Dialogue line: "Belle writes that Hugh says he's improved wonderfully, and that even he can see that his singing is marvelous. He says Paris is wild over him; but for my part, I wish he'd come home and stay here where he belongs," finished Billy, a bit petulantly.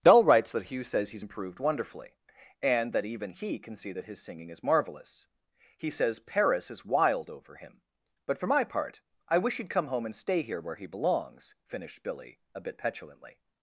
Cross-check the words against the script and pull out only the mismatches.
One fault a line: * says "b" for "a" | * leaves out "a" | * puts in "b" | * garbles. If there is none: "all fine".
* says "Dull" for "Belle"